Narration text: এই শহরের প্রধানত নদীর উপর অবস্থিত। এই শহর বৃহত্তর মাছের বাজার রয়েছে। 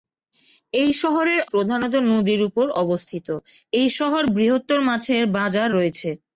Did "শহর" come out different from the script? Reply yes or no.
no